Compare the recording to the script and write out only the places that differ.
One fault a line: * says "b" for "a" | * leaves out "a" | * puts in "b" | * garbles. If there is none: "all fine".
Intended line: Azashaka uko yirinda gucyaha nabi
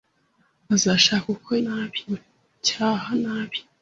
* says "nabi" for "yirinda"